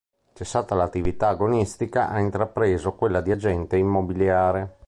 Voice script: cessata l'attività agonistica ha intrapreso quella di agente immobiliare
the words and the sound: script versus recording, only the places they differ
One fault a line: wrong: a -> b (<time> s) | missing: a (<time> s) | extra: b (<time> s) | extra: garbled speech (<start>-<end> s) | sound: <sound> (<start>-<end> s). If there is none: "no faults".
no faults